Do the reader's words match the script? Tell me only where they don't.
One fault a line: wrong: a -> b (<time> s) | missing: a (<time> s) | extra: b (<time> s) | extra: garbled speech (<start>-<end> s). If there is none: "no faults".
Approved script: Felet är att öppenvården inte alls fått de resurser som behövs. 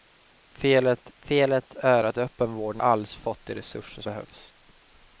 extra: felet (1.2 s)
missing: inte (2.8 s)
missing: som (4.0 s)